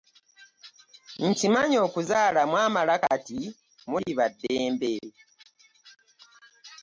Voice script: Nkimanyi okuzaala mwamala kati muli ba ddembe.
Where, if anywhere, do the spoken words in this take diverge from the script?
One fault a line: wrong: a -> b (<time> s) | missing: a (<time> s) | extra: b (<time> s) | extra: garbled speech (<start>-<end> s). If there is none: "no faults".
no faults